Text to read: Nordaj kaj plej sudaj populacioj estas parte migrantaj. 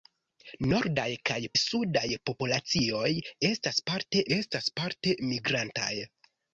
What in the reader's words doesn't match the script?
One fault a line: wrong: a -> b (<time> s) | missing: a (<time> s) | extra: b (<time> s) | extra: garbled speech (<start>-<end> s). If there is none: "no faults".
missing: plej (1.4 s)
extra: estas parte (4.4 s)